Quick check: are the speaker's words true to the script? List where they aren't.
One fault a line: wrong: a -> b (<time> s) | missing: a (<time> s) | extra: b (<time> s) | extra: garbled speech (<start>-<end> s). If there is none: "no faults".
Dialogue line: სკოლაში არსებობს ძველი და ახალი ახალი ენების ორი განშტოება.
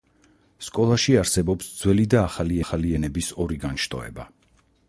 no faults